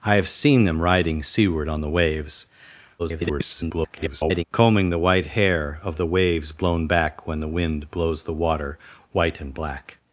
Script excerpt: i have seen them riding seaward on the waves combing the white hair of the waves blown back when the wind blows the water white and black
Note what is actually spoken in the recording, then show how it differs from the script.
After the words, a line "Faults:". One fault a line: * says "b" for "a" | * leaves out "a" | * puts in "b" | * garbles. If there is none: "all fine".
i have seen them riding seaward on the waves [garbled] combing the white hair of the waves blown back when the wind blows the water white and black
Faults:
* garbles